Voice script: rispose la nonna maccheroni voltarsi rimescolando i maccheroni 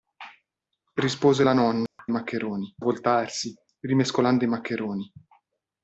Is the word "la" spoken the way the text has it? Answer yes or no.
yes